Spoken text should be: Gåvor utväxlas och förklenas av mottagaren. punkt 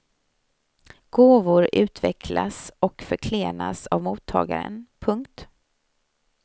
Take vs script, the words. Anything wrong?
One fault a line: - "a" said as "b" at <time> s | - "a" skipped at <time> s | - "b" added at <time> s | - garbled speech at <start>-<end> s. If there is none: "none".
none